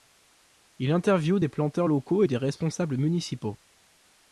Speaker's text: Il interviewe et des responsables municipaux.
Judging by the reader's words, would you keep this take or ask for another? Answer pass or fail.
fail